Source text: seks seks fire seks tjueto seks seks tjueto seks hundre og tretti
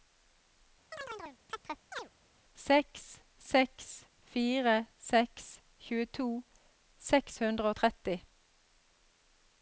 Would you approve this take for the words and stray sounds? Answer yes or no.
no